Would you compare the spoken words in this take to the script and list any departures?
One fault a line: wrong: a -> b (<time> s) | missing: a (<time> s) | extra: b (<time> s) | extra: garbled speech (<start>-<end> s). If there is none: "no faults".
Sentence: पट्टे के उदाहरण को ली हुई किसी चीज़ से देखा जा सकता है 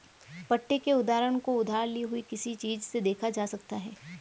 extra: उधार (1.6 s)